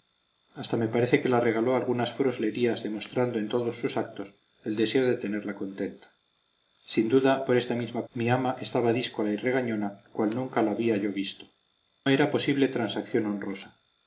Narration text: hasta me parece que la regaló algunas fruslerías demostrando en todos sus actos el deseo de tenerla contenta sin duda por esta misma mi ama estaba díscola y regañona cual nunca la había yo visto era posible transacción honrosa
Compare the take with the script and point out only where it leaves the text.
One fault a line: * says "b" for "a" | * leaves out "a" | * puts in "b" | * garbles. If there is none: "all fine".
all fine